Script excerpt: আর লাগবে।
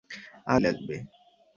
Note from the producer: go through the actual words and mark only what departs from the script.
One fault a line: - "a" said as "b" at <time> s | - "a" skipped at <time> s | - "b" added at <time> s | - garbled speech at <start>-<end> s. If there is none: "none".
none